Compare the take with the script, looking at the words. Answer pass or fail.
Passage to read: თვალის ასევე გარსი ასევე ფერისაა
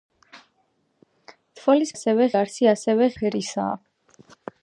pass